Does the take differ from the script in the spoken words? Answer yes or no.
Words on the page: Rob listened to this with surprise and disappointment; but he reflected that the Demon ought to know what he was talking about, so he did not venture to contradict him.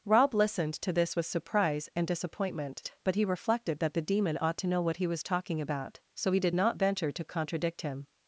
no